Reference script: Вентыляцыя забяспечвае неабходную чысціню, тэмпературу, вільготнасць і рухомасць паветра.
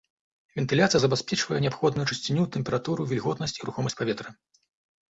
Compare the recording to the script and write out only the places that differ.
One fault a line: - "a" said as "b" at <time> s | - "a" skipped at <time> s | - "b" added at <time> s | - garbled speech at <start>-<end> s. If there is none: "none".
none